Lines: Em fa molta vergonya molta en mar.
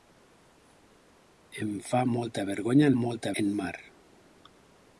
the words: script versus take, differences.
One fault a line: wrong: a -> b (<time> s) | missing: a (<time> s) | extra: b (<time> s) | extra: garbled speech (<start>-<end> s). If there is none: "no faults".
no faults